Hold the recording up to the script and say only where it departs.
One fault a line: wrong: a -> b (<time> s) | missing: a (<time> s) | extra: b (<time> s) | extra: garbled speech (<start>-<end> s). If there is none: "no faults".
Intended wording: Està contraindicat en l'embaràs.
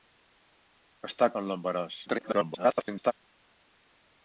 missing: contraindicat (1.3 s)
extra: garbled speech (2.1-3.1 s)